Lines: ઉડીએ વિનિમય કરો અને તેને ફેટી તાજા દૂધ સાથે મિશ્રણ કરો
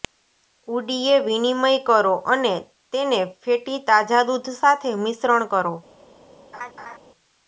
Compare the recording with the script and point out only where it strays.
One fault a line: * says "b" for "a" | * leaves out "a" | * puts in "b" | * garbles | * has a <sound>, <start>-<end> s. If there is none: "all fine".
* has a laugh, 6.5-7.0 s